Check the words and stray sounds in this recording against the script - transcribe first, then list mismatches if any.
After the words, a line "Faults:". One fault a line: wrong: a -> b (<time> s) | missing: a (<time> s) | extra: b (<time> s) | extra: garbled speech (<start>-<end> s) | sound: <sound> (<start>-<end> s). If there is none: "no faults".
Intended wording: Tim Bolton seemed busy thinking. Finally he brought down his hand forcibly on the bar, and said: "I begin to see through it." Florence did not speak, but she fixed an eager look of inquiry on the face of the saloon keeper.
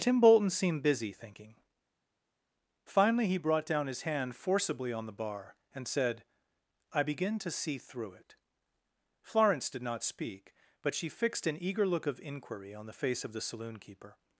Tim Bolton seemed busy thinking. Finally he brought down his hand forcibly on the bar, and said: "I begin to see through it." Florence did not speak, but she fixed an eager look of inquiry on the face of the saloon keeper.
Faults:
no faults